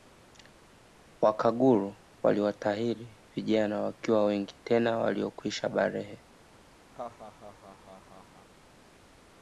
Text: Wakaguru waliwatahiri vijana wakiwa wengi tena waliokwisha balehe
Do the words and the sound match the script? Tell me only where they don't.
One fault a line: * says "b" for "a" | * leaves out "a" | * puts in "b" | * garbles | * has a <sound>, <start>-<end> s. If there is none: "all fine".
* has a laugh, 6.9-8.5 s